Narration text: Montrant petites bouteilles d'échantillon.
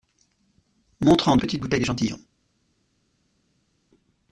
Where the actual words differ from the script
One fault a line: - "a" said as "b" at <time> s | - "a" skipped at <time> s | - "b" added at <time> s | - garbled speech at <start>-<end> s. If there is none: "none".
none